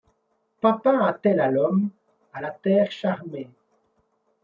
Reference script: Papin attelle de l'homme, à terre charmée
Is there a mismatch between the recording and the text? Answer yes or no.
yes